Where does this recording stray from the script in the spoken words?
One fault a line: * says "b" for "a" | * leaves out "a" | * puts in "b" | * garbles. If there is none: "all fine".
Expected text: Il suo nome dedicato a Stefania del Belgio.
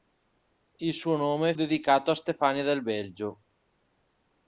all fine